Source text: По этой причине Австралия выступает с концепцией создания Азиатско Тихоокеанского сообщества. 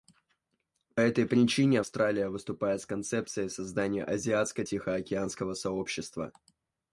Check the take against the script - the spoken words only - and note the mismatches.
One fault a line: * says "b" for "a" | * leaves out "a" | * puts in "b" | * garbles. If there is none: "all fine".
all fine